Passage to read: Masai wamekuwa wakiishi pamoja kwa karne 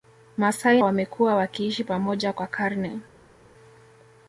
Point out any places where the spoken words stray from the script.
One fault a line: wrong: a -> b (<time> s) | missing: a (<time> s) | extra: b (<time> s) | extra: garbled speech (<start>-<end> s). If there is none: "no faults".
no faults